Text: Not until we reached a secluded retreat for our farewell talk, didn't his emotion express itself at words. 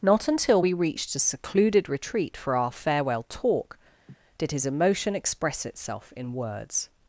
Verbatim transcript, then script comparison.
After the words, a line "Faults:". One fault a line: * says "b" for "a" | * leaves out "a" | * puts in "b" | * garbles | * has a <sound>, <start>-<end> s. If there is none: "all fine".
Not until we reached a secluded retreat for our farewell talk, did his emotion express itself in words.
Faults:
* has a laugh, 4.1-4.2 s
* says "did" for "didn't"
* says "in" for "at"